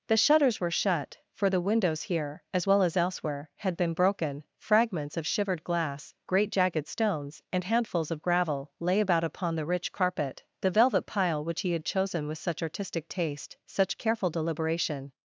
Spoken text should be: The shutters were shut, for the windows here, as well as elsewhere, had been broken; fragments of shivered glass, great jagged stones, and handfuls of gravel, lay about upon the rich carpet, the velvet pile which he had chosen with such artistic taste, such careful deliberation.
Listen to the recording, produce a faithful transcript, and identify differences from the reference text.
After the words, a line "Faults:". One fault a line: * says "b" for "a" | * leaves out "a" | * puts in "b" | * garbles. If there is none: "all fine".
The shutters were shut, for the windows here, as well as elsewhere, had been broken; fragments of shivered glass, great jagged stones, and handfuls of gravel, lay about upon the rich carpet, the velvet pile which he had chosen with such artistic taste, such careful deliberation.
Faults:
all fine